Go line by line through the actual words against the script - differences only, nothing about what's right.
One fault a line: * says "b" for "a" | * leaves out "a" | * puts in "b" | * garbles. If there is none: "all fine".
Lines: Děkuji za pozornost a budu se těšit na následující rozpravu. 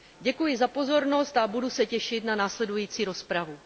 all fine